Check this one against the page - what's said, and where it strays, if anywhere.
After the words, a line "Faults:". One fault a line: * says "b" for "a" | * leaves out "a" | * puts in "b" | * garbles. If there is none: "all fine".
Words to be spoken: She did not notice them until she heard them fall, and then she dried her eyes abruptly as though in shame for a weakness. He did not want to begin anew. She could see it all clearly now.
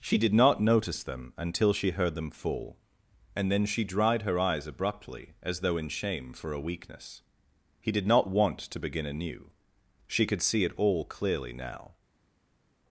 She did not notice them until she heard them fall, and then she dried her eyes abruptly as though in shame for a weakness. He did not want to begin anew. She could see it all clearly now.
Faults:
all fine